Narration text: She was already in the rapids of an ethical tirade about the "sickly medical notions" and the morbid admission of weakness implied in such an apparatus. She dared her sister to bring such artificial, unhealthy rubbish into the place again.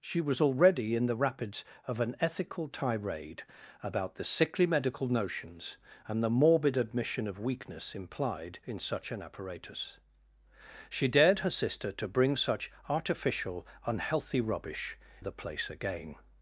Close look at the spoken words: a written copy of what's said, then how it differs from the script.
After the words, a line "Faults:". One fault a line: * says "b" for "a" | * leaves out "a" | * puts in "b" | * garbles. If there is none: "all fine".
She was already in the rapids of an ethical tirade about the "sickly medical notions" and the morbid admission of weakness implied in such an apparatus. She dared her sister to bring such artificial, unhealthy rubbish the place again.
Faults:
* leaves out "into"